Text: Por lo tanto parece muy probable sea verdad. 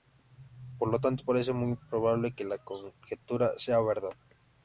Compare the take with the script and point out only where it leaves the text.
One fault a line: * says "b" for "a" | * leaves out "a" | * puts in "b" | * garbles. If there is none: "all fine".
* puts in "que la conjetura"